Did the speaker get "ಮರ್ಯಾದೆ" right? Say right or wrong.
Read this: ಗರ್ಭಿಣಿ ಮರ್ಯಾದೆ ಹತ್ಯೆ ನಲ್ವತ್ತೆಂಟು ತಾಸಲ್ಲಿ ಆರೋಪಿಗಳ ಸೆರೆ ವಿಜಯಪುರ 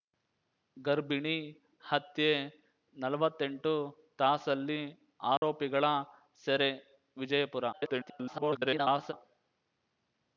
wrong